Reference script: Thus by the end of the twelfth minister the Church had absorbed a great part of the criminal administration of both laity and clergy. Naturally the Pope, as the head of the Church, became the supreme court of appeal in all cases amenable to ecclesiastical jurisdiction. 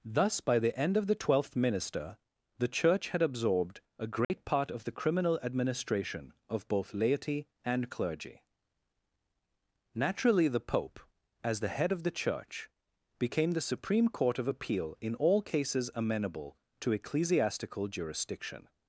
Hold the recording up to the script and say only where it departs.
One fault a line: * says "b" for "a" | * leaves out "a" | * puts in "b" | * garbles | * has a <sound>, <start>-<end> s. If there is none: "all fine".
* has a dropout, 4.2-4.3 s